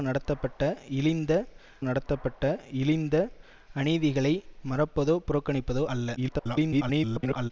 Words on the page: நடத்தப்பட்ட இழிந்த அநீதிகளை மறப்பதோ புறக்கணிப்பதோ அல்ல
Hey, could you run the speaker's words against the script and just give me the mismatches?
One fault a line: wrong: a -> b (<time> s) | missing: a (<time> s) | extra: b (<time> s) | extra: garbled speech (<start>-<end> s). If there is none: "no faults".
extra: நடத்தப்பட்ட இழிந்த (1.8 s)
extra: garbled speech (6.2-7.5 s)